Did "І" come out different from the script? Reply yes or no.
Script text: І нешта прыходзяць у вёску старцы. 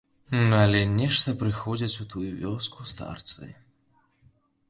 yes